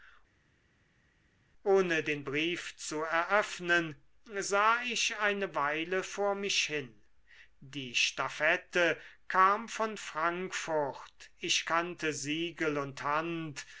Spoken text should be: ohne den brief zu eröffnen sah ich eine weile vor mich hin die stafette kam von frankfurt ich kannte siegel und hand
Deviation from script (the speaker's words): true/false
false